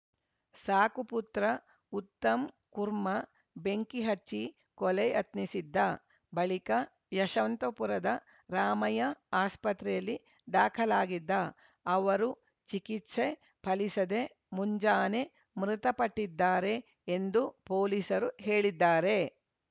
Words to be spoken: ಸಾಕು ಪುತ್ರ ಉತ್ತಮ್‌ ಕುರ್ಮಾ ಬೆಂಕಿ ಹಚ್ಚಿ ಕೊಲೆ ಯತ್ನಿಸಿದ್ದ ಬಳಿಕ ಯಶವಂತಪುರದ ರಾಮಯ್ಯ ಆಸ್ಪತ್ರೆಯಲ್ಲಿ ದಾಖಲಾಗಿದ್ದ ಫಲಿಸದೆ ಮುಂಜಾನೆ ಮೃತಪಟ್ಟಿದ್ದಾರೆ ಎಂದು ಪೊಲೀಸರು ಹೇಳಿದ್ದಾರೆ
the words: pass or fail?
fail